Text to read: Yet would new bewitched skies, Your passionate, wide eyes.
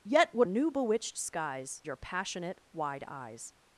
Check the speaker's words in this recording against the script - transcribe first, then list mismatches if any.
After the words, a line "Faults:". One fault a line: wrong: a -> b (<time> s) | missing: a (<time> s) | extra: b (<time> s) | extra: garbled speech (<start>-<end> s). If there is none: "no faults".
Yet would new bewitched skies, Your passionate, wide eyes.
Faults:
no faults